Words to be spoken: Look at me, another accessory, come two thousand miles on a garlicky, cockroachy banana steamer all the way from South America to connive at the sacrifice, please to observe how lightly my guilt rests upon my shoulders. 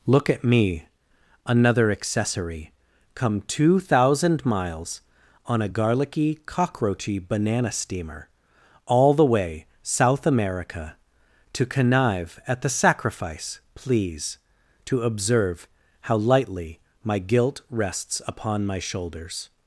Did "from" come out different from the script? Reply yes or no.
yes